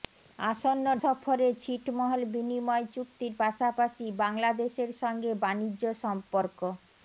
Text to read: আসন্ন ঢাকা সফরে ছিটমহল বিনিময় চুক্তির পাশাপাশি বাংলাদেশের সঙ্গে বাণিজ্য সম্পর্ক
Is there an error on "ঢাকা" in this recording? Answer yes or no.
yes